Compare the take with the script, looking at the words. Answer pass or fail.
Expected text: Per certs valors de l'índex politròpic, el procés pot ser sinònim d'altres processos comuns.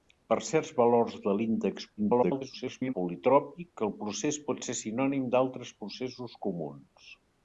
fail